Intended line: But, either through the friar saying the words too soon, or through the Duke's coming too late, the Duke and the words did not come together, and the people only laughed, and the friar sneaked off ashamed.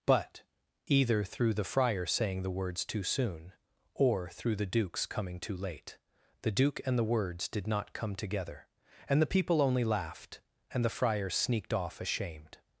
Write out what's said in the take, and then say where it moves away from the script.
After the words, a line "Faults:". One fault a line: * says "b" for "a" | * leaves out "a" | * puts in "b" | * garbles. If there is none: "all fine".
But, either through the friar saying the words too soon, or through the Duke's coming too late, the Duke and the words did not come together, and the people only laughed, and the friar sneaked off ashamed.
Faults:
all fine